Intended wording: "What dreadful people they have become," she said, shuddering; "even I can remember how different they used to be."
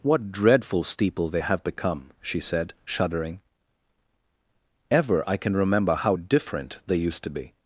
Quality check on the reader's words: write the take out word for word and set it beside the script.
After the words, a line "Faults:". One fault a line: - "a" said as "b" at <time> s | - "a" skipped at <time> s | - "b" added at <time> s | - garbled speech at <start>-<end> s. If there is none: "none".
"What dreadful steeple they have become," she said, shuddering; "ever I can remember how different they used to be."
Faults:
- "people" said as "steeple" at 0.8 s
- "even" said as "ever" at 4.9 s